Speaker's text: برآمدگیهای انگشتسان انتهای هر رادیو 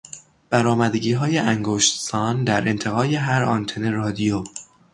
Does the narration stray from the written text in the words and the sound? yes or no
yes